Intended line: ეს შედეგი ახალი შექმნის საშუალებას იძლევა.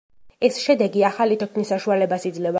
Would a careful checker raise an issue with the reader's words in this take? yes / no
no